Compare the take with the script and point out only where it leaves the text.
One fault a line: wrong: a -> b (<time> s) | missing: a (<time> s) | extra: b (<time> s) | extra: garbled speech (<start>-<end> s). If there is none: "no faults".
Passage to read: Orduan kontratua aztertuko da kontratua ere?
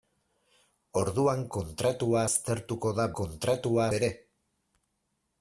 no faults